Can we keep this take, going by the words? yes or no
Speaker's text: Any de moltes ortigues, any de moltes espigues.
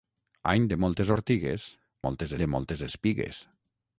no